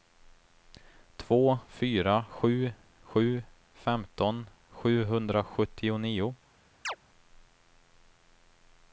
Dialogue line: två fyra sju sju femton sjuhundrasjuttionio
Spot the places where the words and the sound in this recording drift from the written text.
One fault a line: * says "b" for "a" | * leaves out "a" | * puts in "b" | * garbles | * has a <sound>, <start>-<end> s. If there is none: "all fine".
* has a chirp, 6.8-7.0 s